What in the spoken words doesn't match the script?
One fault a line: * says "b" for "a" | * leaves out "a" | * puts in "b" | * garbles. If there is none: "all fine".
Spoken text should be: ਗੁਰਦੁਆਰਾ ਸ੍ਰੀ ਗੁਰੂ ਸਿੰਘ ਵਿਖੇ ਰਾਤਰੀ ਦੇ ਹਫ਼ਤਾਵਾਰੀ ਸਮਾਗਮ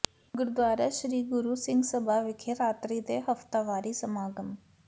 * puts in "ਸਭਾ"